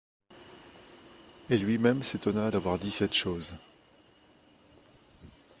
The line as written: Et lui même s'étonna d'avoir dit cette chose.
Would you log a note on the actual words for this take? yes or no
no